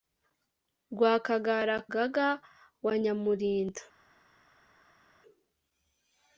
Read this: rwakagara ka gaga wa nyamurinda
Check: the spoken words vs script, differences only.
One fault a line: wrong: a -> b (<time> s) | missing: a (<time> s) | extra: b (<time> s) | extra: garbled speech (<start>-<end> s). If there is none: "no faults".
missing: ka (1.8 s)